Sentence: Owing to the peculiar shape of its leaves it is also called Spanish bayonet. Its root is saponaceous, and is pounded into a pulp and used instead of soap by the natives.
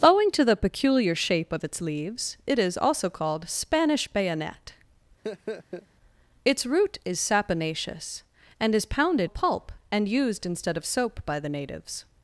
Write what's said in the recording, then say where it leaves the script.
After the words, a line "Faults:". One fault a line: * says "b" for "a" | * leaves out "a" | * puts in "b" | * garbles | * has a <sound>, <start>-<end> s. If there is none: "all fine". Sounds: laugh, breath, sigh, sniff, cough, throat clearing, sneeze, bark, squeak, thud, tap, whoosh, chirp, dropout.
Owing to the peculiar shape of its leaves it is also called Spanish bayonet. Its root is saponaceous, and is pounded a pulp and used instead of soap by the natives.
Faults:
* has a laugh, 5.2-5.9 s
* leaves out "into"